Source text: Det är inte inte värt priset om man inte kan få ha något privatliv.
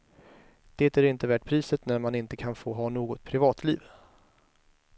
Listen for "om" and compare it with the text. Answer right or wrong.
wrong